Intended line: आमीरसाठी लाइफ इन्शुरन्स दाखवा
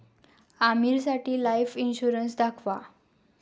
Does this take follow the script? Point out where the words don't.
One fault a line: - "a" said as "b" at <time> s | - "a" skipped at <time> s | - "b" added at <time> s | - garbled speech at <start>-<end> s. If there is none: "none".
none